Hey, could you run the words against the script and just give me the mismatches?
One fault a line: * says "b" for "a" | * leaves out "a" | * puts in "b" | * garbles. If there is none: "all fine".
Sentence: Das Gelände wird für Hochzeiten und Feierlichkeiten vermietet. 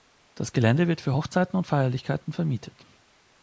all fine